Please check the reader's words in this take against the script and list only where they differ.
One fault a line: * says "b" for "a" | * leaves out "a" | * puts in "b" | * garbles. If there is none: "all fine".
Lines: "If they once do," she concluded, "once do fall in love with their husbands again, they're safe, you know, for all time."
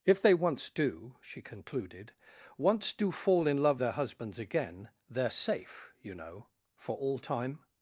* leaves out "with"